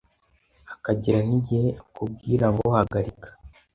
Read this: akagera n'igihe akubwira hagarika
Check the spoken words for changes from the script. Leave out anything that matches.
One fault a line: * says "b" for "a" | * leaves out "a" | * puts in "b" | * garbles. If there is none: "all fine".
* puts in "ngo"